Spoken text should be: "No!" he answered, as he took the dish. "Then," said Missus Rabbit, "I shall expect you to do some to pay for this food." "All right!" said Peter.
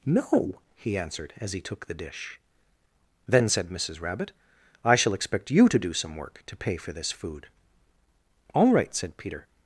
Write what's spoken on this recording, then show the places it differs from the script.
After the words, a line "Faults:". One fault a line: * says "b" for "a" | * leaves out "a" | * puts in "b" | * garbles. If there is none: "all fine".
"No!" he answered, as he took the dish. "Then," said Missus Rabbit, "I shall expect you to do some work, to pay for this food." "All right!" said Peter.
Faults:
* puts in "work"